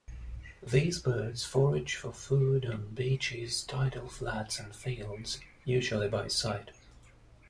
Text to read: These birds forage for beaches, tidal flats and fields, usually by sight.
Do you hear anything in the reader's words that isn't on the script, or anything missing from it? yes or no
yes